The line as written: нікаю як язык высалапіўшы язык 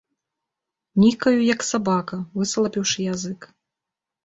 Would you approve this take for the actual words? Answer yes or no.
no